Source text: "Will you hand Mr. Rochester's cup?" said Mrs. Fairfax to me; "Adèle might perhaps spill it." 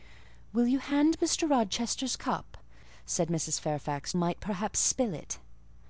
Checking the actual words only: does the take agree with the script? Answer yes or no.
no